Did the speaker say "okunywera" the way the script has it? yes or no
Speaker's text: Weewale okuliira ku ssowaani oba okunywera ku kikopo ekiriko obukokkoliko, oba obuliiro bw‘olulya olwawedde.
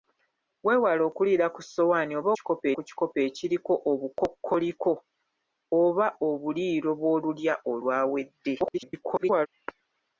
no